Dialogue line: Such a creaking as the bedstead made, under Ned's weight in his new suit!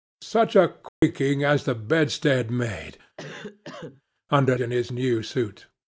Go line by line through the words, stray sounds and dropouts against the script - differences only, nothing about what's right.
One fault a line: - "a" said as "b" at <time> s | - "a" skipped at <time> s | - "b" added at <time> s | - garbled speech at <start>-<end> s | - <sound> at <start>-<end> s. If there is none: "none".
- dropout at 0.9-1.0 s
- cough at 3.2-4.0 s
- "Ned's weight" skipped at 4.6 s